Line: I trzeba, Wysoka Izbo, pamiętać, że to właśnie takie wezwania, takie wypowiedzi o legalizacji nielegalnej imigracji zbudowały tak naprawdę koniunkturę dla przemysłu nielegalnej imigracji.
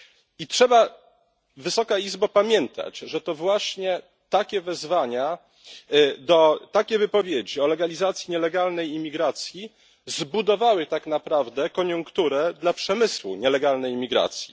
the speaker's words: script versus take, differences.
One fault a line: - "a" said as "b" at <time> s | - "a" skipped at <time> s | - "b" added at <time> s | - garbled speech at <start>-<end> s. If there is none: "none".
none